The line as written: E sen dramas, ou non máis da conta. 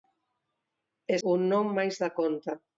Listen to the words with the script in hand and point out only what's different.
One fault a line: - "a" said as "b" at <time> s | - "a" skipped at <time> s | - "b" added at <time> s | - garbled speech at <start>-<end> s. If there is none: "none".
- "sen dramas" skipped at 1.2 s